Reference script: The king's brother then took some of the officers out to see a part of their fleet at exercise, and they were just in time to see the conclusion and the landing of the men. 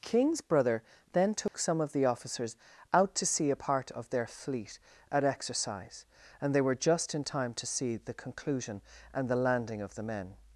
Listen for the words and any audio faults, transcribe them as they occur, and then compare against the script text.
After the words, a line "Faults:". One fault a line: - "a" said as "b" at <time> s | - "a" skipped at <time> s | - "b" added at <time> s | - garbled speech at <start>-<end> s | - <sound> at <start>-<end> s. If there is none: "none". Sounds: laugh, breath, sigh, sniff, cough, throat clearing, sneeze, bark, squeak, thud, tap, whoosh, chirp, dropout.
king's brother then took some of the officers out to see a part of their fleet at exercise, and they were just in time to see the conclusion and the landing of the men.
Faults:
- "The" skipped at 0.0 s
- dropout at 1.5-1.5 s